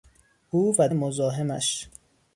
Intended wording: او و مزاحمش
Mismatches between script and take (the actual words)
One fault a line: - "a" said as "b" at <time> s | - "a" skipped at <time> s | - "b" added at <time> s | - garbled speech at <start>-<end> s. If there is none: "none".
none